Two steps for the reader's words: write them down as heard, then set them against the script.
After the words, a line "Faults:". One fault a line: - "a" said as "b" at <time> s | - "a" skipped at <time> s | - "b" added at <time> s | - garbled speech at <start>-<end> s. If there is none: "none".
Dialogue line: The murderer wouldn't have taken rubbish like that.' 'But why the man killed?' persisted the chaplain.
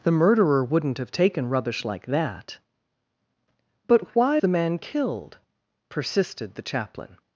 The murderer wouldn't have taken rubbish like that.' 'But why the man killed?' persisted the chaplain.
Faults:
none